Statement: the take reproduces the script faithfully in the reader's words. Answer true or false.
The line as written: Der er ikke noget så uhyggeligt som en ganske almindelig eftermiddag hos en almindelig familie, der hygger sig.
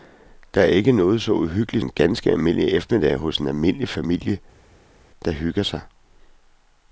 false